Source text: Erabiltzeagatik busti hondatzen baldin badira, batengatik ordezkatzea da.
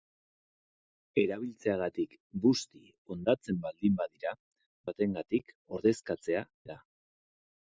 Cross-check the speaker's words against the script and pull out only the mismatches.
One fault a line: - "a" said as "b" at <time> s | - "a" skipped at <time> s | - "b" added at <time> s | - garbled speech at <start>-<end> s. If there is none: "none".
none